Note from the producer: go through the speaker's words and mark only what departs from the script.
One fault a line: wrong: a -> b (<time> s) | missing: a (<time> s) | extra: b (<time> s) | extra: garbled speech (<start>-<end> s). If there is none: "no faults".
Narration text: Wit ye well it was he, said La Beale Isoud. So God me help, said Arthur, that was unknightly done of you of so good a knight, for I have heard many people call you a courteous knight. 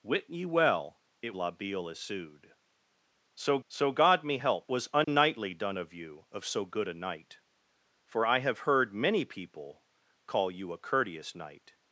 missing: was he said (1.4 s)
extra: so (3.7 s)
missing: said Arthur that (4.7 s)